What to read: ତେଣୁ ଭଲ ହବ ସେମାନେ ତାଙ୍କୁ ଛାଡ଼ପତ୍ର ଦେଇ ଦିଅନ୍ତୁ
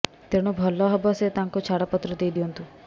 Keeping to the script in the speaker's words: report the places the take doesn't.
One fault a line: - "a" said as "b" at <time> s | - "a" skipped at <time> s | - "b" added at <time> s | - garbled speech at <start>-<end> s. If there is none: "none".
- "ସେମାନେ" said as "ସେ" at 1.2 s